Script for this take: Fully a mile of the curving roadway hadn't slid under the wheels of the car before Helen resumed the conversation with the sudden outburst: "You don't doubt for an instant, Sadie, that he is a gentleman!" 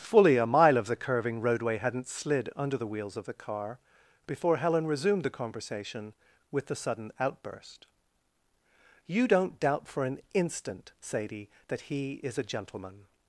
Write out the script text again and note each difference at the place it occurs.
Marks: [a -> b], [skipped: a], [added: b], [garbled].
Fully a mile of the curving roadway hadn't slid under the wheels of the car before Helen resumed the conversation with the sudden outburst: "You don't doubt for an instant, Sadie, that he is a gentleman!"